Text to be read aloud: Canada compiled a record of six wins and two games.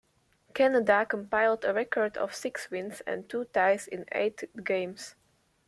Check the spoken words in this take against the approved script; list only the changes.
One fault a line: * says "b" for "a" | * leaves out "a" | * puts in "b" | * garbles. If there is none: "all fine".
* puts in "ties in eight"